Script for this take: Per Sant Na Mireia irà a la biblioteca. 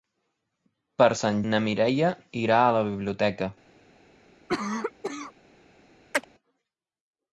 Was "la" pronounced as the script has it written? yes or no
yes